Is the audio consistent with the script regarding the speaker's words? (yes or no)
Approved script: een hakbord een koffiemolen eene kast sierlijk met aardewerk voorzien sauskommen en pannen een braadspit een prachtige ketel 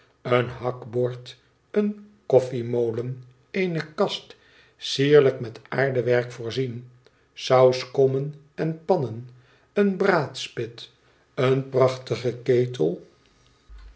yes